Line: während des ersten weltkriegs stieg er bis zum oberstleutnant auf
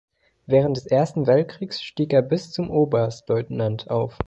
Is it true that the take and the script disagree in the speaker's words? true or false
false